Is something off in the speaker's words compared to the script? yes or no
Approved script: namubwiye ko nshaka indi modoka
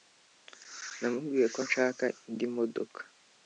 no